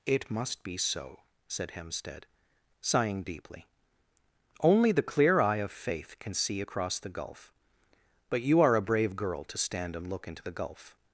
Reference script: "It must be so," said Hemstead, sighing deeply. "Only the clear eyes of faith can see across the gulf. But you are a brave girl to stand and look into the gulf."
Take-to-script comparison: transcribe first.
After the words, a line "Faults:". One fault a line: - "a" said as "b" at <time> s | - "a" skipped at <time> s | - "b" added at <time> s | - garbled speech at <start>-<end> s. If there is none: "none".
"It must be so," said Hemstead, sighing deeply. "Only the clear eye of faith can see across the gulf. But you are a brave girl to stand and look into the gulf."
Faults:
- "eyes" said as "eye" at 5.4 s